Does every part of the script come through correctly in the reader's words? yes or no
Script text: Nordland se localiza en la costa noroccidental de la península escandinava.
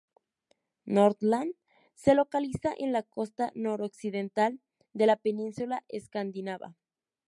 yes